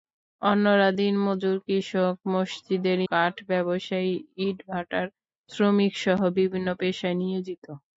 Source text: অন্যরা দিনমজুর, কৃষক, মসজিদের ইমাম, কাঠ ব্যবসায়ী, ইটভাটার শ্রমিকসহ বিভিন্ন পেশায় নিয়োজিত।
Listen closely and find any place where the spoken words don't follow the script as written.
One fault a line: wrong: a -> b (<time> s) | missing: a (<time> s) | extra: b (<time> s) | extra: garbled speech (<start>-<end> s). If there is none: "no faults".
missing: ইমাম (3.0 s)